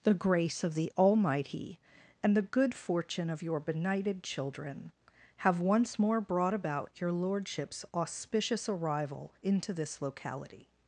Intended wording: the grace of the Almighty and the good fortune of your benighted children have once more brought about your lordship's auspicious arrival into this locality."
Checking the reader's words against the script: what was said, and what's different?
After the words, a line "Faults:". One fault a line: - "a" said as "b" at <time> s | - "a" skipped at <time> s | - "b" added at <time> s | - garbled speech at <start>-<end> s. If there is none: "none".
the grace of the Almighty and the good fortune of your benighted children have once more brought about your lordship's auspicious arrival into this locality."
Faults:
none